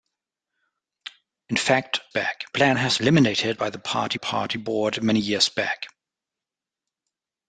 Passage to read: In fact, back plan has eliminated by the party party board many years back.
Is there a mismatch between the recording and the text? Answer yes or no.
no